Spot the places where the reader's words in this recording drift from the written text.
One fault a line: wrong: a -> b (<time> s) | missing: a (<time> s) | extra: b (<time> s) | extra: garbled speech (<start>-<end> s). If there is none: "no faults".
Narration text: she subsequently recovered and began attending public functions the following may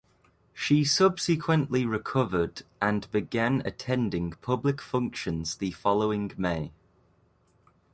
no faults